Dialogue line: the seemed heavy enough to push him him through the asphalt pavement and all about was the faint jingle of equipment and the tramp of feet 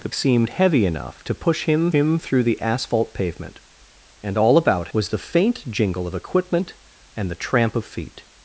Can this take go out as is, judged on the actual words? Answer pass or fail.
pass